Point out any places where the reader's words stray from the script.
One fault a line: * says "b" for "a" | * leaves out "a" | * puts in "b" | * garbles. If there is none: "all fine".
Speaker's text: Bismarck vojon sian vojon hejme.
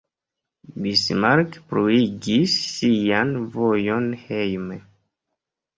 * says "pluigis" for "vojon"